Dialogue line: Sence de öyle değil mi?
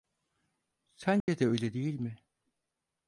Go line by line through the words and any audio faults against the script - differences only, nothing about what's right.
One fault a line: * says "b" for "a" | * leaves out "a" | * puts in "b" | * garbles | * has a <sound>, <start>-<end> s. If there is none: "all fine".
* has a dropout, 1.2-1.3 s